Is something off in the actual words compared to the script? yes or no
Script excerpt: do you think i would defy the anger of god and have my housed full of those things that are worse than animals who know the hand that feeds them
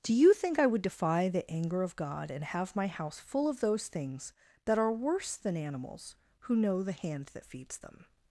yes